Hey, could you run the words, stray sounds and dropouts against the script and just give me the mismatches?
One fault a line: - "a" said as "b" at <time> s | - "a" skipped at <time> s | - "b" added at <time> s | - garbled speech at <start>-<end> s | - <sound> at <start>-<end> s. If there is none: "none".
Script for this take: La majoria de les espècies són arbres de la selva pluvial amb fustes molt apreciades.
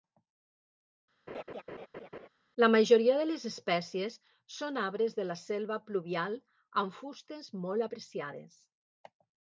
- laugh at 1.3-2.3 s